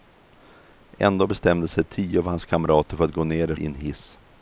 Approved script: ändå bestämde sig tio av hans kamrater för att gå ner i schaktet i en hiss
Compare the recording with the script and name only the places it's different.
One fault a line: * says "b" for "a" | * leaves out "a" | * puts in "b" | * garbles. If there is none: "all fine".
* leaves out "schaktet"